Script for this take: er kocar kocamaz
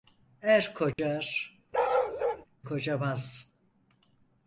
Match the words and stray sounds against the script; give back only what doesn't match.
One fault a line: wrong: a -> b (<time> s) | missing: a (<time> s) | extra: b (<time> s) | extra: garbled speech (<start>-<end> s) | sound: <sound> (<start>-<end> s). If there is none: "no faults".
sound: dropout (0.9-1.0 s)
sound: bark (1.7-2.5 s)